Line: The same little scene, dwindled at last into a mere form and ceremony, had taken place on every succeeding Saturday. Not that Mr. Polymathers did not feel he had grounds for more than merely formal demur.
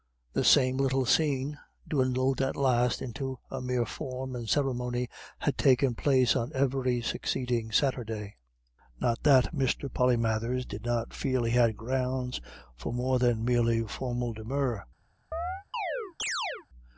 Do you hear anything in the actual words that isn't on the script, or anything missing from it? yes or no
no